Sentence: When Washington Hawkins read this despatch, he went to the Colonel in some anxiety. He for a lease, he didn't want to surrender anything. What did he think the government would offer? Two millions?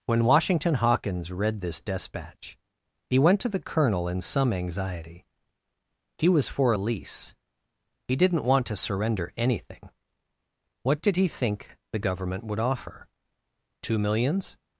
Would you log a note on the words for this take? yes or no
yes